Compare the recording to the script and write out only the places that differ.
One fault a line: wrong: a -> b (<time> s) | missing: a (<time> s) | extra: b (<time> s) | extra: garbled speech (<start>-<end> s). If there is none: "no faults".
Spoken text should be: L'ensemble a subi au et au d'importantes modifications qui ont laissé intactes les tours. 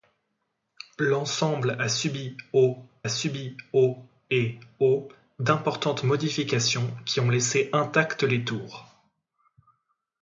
extra: subi au (3.1 s)